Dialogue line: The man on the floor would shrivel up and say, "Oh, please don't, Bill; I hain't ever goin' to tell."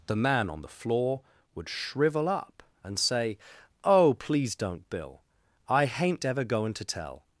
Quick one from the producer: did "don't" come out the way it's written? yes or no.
yes